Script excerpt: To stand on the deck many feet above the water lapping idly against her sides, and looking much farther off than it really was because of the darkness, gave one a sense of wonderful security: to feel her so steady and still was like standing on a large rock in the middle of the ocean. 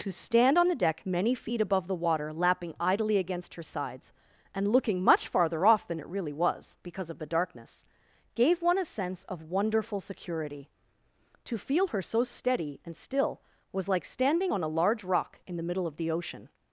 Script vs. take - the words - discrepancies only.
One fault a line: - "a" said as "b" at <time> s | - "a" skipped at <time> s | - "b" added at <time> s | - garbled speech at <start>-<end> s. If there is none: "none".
none